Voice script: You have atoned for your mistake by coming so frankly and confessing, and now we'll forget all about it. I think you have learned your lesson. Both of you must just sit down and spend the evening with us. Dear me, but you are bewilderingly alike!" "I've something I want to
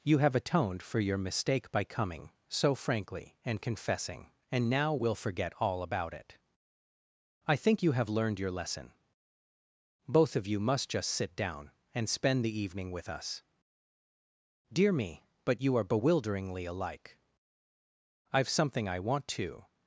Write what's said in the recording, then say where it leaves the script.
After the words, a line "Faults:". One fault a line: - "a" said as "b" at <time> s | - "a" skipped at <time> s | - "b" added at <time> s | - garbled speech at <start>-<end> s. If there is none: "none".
You have atoned for your mistake by coming so frankly and confessing, and now we'll forget all about it. I think you have learned your lesson. Both of you must just sit down and spend the evening with us. Dear me, but you are bewilderingly alike!" "I've something I want to
Faults:
none